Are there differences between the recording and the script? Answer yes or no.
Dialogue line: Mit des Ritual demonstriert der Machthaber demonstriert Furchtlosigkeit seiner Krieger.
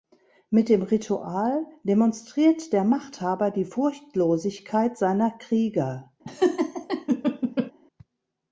yes